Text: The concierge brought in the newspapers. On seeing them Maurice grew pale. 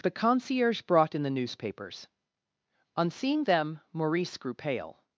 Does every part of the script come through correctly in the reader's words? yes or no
yes